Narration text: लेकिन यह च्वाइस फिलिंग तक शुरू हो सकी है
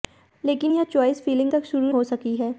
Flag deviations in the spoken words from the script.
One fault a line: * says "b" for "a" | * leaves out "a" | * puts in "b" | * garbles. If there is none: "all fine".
all fine